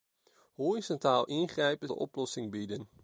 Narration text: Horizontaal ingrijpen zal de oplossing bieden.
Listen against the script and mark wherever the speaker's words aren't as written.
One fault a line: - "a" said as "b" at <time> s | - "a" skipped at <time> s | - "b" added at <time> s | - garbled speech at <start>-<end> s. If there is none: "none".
- "zal" skipped at 1.9 s